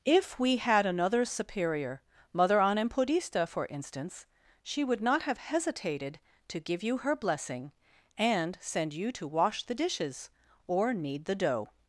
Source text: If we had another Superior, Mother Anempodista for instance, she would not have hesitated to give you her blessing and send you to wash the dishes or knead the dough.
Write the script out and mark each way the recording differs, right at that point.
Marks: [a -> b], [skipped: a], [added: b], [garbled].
If we had another Superior, Mother Anempodista for instance, she would not have hesitated to give you her blessing and send you to wash the dishes or knead the dough.